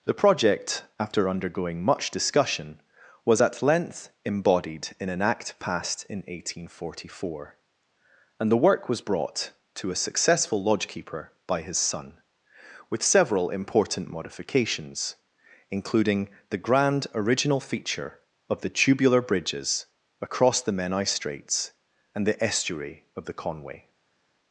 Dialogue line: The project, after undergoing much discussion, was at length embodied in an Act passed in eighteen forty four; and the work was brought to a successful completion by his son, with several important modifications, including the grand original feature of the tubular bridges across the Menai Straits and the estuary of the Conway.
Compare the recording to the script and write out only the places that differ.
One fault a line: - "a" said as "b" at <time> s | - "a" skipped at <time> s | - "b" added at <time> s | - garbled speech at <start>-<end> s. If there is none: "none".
- "completion" said as "lodgekeeper" at 10.6 s